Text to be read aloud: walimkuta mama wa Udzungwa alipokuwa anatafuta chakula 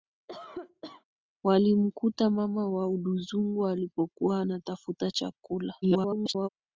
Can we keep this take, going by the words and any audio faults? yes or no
no